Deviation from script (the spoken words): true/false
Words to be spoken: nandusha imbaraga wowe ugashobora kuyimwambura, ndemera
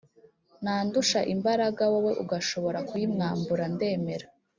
false